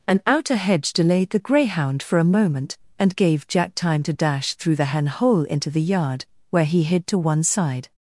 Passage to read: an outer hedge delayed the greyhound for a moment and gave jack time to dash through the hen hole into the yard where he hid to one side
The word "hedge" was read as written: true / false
true